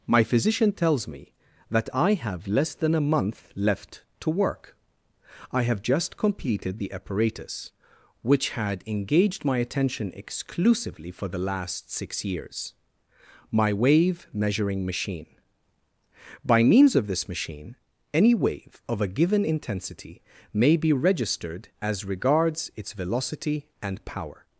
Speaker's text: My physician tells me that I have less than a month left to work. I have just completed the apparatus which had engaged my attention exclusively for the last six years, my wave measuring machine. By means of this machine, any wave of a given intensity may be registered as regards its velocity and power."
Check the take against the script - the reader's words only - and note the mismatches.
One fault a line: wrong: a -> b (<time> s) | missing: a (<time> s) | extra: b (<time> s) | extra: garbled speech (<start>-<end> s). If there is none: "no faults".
no faults